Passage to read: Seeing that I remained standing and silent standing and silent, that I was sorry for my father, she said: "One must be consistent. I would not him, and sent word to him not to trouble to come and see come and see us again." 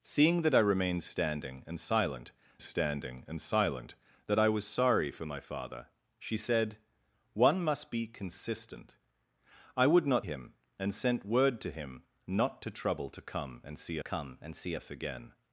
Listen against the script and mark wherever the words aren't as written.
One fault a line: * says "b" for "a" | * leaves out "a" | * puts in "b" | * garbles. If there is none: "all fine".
all fine